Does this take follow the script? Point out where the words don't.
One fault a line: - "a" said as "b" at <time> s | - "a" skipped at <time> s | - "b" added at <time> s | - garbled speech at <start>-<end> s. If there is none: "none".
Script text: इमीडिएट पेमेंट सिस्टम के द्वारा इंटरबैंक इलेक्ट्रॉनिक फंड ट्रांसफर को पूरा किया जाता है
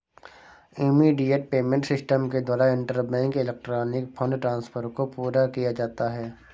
none